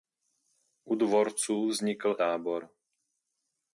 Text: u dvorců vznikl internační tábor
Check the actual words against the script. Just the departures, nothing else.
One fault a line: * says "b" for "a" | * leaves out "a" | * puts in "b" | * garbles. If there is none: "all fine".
* leaves out "internační"